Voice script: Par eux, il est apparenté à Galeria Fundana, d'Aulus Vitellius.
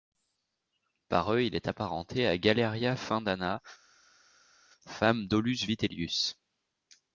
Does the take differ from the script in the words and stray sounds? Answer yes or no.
yes